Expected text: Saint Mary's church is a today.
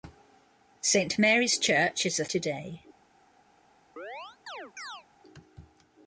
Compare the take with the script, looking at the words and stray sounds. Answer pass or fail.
fail